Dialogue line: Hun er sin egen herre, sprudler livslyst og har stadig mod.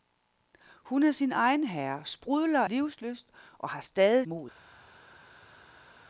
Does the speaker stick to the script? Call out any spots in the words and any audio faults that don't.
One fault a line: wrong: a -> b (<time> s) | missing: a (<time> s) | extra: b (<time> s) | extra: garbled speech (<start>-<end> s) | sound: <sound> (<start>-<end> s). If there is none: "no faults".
no faults